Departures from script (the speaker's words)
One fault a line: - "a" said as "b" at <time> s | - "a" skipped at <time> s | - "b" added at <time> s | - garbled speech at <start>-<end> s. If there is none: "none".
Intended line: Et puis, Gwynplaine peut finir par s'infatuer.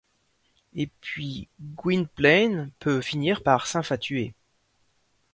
none